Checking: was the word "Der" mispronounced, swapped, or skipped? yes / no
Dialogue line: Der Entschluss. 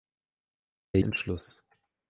no